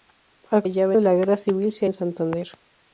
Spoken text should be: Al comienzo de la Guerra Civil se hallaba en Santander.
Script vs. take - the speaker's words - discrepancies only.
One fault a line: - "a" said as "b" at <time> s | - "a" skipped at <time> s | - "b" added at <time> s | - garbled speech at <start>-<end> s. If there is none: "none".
- "comienzo" said as "hallaba" at 0.6 s
- "hallaba" skipped at 1.9 s